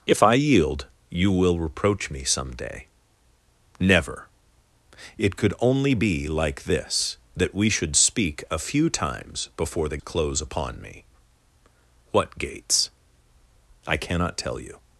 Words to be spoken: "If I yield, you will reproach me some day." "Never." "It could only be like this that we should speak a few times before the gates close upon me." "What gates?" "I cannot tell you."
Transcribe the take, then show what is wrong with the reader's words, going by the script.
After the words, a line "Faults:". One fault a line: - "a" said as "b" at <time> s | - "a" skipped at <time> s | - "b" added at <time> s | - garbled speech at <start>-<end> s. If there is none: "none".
"If I yield, you will reproach me some day." "Never." "It could only be like this that we should speak a few times before the close upon me." "What gates?" "I cannot tell you."
Faults:
- "gates" skipped at 10.0 s